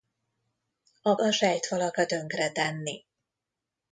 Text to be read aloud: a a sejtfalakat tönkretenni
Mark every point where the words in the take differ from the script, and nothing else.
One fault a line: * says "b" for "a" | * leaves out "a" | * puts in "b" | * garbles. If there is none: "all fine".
all fine